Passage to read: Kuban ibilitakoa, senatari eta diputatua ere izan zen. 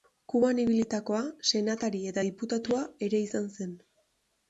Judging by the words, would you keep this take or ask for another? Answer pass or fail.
pass